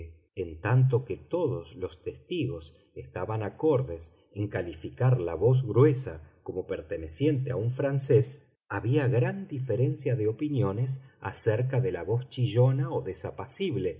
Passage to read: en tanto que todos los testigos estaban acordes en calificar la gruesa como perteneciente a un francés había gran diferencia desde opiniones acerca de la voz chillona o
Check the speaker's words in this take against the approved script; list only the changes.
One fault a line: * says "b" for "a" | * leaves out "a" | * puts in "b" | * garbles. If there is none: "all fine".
* puts in "voz"
* says "de" for "desde"